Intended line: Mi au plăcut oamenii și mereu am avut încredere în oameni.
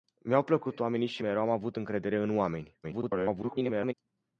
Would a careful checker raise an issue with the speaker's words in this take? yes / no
yes